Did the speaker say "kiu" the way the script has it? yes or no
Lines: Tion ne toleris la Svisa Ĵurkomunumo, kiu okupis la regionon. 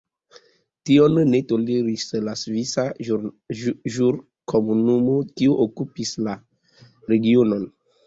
yes